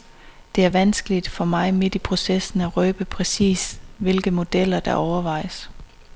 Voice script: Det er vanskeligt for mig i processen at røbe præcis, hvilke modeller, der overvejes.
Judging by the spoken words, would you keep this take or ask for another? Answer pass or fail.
fail